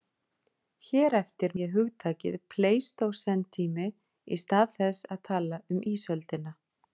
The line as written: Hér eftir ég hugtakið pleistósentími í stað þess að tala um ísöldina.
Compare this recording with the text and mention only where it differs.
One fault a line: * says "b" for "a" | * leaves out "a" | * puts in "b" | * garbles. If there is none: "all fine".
all fine